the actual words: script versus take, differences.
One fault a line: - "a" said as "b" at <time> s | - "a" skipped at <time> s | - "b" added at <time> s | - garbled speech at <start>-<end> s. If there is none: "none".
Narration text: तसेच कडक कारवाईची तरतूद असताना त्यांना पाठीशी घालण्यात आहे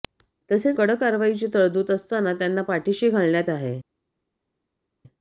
none